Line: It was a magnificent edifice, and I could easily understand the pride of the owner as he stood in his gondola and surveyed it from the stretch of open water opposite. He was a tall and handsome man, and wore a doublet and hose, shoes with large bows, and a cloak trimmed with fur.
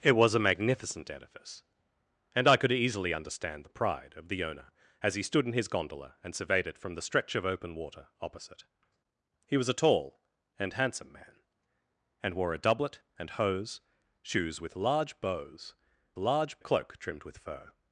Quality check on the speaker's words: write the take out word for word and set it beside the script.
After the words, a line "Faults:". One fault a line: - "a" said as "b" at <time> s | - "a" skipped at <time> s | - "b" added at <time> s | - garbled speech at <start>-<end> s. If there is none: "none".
It was a magnificent edifice, and I could easily understand the pride of the owner as he stood in his gondola and surveyed it from the stretch of open water opposite. He was a tall and handsome man, and wore a doublet and hose, shoes with large bows, large a cloak trimmed with fur.
Faults:
- "and" said as "large" at 16.2 s